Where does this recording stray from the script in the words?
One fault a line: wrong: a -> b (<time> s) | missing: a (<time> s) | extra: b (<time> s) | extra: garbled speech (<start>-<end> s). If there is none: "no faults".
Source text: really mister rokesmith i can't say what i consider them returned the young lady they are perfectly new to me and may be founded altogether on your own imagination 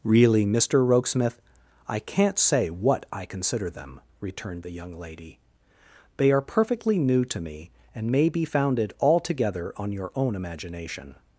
no faults